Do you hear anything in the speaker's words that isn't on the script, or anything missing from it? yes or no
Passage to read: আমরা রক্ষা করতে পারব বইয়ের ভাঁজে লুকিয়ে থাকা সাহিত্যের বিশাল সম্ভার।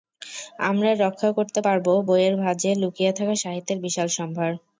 no